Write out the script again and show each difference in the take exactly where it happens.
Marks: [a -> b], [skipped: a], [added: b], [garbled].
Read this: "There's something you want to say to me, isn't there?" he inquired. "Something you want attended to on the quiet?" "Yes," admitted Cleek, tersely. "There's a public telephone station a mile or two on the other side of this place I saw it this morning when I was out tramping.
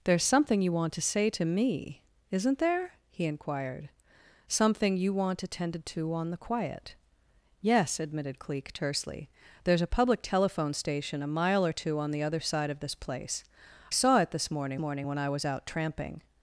"There's something you want to say to me, isn't there?" he inquired. "Something you want attended to on the quiet?" "Yes," admitted Cleek, tersely. "There's a public telephone station a mile or two on the other side of this place [skipped: I] saw it this morning [added: morning] when I was out tramping.